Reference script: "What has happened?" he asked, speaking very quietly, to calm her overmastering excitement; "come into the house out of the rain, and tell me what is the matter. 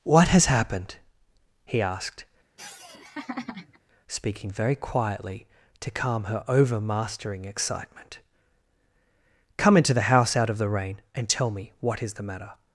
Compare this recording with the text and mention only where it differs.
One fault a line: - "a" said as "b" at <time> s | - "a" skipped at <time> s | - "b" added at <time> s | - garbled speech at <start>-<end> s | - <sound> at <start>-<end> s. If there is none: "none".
- laugh at 2.6-3.8 s